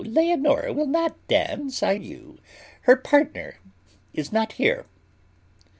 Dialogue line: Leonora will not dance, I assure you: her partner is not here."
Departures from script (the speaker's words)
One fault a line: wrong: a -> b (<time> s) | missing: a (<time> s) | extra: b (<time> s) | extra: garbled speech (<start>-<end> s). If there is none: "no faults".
missing: assure (1.9 s)